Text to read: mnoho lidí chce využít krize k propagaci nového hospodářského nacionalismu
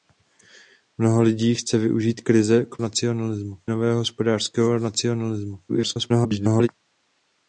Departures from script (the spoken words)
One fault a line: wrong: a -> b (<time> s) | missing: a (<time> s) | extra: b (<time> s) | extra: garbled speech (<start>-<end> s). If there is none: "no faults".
wrong: propagaci -> nacionalismu (2.8 s)
extra: garbled speech (5.7-6.7 s)